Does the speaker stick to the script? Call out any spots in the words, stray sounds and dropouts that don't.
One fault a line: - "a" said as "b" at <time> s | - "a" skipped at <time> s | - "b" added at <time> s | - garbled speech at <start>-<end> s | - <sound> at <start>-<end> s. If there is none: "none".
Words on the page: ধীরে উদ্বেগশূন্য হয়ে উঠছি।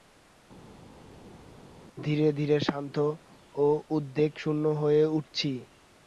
- "ধীরে শান্ত ও" added at 2.3 s